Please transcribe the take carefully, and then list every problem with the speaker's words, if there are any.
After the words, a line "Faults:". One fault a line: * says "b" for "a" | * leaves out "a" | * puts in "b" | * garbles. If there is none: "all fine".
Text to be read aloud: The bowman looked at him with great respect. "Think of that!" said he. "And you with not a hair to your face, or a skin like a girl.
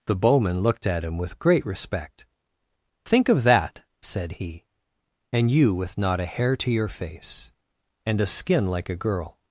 The bowman looked at him with great respect. "Think of that!" said he. "And you with not a hair to your face, and a skin like a girl.
Faults:
* says "and" for "or"